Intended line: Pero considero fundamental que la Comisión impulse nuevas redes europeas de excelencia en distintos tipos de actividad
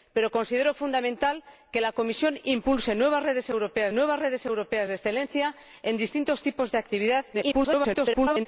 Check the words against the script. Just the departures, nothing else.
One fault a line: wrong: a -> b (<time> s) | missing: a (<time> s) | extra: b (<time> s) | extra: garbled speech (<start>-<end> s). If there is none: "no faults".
extra: nuevas redes europeas (3.9 s)
extra: garbled speech (7.3-8.5 s)